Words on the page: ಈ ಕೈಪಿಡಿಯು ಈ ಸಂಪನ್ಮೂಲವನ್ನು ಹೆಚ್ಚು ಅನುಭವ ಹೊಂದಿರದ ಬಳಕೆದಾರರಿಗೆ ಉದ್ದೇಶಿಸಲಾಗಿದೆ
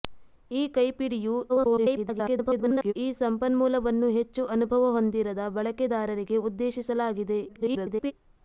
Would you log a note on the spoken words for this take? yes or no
yes